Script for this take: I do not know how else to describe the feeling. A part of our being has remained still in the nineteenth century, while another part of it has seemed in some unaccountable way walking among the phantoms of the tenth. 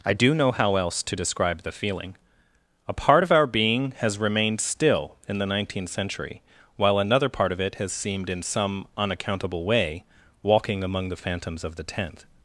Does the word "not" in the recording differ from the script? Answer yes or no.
yes